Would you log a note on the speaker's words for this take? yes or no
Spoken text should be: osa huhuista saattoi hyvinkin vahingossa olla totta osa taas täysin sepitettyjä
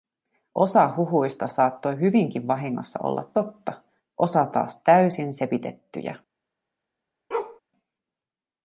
no